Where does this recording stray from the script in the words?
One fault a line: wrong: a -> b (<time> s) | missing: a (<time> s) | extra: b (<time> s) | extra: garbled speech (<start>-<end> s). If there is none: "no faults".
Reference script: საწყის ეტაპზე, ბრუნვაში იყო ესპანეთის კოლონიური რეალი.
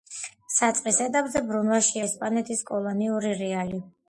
missing: იყო (1.9 s)